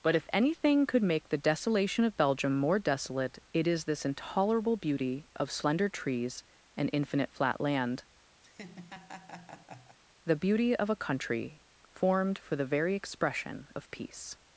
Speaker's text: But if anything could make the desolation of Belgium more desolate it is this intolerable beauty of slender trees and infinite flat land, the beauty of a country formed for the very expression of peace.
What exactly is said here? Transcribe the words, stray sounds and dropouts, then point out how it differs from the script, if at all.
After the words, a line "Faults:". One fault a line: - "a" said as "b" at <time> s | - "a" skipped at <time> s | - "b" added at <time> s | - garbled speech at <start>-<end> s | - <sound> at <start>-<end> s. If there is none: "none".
But if anything could make the desolation of Belgium more desolate it is this intolerable beauty of slender trees and infinite flat land, the beauty of a country formed for the very expression of peace.
Faults:
- laugh at 8.4-10.0 s